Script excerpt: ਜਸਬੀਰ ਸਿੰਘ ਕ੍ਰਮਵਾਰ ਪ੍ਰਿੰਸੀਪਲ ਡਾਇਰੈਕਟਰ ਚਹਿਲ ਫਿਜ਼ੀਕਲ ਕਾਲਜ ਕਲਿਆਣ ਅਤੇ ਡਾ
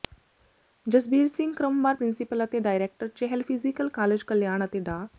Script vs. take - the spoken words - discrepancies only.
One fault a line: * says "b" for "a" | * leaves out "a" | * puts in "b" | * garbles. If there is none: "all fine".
* puts in "ਅਤੇ"